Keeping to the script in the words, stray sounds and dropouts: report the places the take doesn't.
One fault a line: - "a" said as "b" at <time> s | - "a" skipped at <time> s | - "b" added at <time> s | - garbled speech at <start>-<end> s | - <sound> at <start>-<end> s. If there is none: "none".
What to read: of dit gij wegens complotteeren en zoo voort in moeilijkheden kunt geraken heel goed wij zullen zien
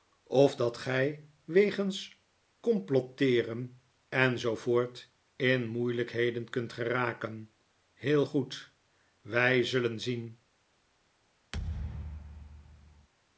- "dit" said as "dat" at 0.6 s
- thud at 11.5-13.1 s